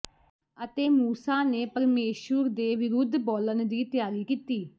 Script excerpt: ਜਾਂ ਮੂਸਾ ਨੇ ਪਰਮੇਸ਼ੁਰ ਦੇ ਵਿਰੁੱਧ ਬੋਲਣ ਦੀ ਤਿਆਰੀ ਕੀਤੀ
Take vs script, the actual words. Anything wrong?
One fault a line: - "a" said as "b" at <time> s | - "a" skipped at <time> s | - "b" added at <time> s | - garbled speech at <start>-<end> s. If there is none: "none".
- "ਜਾਂ" said as "ਅਤੇ" at 0.6 s